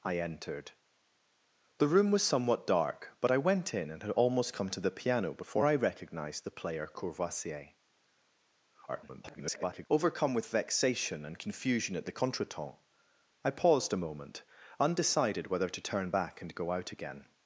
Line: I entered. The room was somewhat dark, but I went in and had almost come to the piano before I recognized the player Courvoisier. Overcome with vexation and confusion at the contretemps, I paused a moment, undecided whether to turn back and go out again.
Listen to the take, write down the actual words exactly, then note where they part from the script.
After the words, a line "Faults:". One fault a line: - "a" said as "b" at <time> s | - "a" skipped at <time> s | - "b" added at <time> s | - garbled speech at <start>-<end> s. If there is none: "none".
I entered. The room was somewhat dark, but I went in and had almost come to the piano before I recognized the player Courvoisier. [garbled] Overcome with vexation and confusion at the contretemps, I paused a moment, undecided whether to turn back and go out again.
Faults:
- garbled speech at 8.9-9.9 s